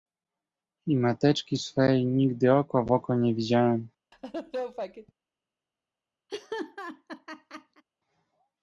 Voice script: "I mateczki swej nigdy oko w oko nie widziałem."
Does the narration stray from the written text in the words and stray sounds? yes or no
yes